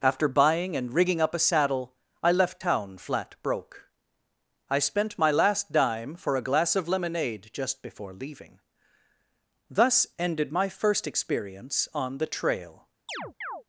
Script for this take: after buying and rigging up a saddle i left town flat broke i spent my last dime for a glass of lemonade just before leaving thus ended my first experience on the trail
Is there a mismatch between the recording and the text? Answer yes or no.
no